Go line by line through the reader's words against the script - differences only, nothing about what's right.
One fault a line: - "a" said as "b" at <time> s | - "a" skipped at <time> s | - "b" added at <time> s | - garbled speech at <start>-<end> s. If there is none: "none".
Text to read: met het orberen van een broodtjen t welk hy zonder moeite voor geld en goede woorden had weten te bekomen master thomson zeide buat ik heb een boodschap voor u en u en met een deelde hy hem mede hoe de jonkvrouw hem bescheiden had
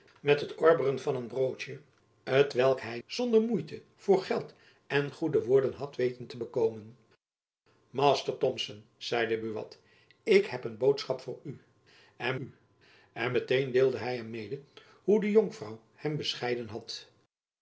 none